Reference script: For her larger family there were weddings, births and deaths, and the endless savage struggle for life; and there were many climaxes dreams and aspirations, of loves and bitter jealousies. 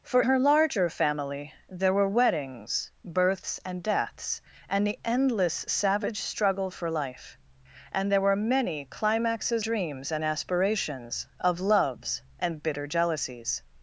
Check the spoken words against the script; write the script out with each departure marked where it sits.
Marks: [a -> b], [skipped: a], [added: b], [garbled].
For her larger family there were weddings, births and deaths, and the endless savage struggle for life; and there were many climaxes dreams and aspirations, of loves and bitter jealousies.